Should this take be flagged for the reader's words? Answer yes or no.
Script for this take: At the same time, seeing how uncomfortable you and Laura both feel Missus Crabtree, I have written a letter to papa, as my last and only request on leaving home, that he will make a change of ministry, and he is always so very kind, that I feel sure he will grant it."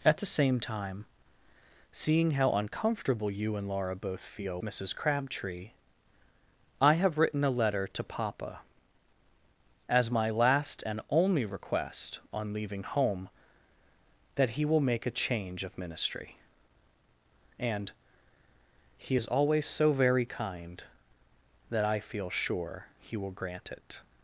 no